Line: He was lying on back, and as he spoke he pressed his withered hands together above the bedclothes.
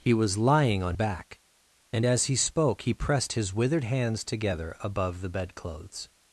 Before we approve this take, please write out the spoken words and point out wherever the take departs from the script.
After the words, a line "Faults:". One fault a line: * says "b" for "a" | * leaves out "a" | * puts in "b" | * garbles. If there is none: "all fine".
He was lying on back, and as he spoke he pressed his withered hands together above the bedclothes.
Faults:
all fine